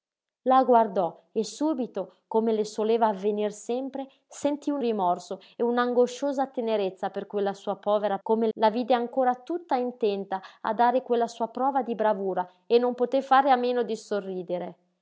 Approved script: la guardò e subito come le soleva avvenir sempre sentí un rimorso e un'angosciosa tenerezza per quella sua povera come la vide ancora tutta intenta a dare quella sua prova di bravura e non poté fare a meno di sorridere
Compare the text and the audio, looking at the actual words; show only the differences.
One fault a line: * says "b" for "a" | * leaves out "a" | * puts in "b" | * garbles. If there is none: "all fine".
all fine